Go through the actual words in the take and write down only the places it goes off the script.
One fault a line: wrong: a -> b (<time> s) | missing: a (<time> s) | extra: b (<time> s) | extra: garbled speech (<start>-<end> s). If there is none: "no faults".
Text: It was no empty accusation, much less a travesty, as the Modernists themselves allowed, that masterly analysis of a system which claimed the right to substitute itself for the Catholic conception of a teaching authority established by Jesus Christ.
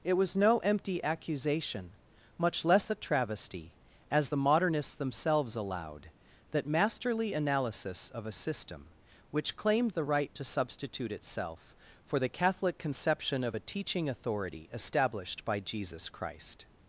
no faults